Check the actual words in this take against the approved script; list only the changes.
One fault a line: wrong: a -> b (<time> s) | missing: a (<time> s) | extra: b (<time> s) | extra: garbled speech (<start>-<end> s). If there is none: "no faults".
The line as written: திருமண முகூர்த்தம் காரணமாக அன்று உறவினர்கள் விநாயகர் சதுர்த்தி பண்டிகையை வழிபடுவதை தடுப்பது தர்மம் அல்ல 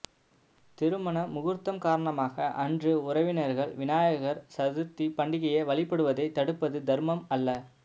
no faults